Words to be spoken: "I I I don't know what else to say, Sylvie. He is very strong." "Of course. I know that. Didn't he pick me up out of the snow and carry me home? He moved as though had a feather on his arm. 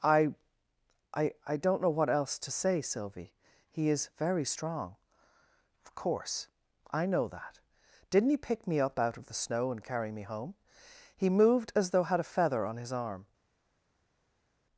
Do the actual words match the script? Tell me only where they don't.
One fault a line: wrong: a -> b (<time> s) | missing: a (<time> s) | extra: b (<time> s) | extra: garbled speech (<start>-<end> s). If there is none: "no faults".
no faults